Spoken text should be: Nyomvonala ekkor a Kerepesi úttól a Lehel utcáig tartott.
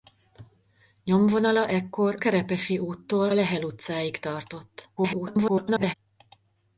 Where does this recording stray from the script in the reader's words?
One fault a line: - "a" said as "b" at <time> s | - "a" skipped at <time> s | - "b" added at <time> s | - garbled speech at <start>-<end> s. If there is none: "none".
- "a" skipped at 2.2 s
- "a" skipped at 3.3 s
- garbled speech at 5.0-5.9 s